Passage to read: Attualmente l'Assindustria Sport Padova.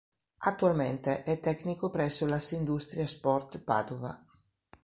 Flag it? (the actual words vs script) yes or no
yes